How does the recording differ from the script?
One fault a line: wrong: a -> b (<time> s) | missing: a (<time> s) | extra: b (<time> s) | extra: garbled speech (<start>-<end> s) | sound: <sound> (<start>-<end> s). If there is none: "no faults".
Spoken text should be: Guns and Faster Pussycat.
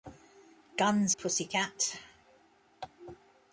missing: and Faster (1.1 s)